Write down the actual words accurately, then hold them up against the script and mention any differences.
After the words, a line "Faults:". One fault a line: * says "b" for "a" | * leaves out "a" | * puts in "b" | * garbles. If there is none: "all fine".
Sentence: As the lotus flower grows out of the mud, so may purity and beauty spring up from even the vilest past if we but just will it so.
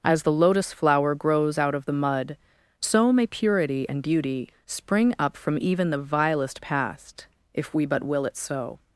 As the lotus flower grows out of the mud, so may purity and beauty spring up from even the vilest past if we but will it so.
Faults:
* leaves out "just"